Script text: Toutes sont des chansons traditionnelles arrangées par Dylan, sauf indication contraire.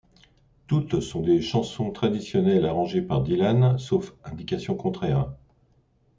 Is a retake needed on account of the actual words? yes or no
no